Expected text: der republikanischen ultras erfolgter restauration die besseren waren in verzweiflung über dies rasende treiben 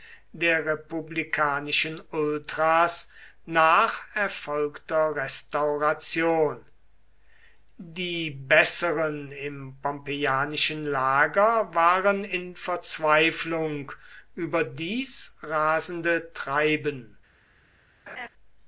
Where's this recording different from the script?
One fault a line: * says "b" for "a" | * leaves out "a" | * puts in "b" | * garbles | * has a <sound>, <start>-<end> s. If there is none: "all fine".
* puts in "nach"
* puts in "im pompeianischen lager"
* has a laugh, 18.1-18.3 s